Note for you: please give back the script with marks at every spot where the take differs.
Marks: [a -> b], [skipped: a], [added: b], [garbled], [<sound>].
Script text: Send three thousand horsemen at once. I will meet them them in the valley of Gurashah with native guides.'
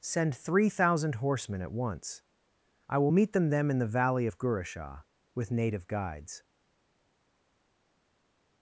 Send three thousand horsemen at once. I will meet them them in the valley of Gurashah with native guides.'